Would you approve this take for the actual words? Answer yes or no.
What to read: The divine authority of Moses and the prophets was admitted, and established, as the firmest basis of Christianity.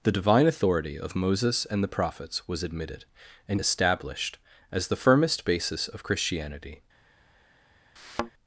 yes